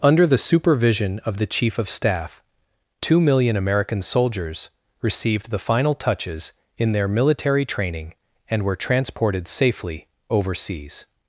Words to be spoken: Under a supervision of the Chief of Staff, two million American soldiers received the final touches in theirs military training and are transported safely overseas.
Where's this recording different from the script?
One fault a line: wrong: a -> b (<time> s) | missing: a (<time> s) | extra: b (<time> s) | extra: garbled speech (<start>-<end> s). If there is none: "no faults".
wrong: a -> the (0.2 s)
wrong: theirs -> their (6.9 s)
wrong: are -> were (8.6 s)